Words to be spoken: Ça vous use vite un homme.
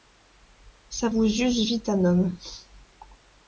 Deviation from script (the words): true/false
false